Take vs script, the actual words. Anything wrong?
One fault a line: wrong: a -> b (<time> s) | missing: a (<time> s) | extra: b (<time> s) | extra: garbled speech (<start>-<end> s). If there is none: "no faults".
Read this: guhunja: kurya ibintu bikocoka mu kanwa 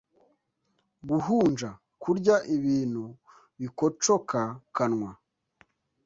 missing: mu (4.4 s)